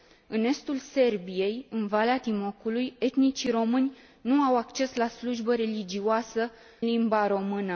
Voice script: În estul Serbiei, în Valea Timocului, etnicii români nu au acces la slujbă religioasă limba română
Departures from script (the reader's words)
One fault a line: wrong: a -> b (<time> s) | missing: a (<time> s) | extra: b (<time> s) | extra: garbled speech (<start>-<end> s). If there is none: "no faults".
no faults